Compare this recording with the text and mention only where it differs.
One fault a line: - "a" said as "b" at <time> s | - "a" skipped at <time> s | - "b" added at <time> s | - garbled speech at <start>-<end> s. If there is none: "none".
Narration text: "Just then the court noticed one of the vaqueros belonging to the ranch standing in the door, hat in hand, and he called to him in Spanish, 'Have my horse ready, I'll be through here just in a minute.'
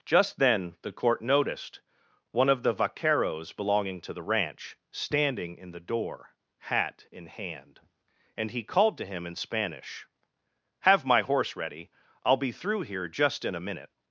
none